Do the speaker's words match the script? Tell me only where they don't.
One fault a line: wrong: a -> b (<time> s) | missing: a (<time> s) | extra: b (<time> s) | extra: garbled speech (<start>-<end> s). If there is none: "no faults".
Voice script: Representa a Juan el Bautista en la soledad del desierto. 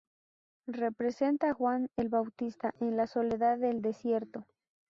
no faults